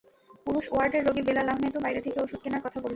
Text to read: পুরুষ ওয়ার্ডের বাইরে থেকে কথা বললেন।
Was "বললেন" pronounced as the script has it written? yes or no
yes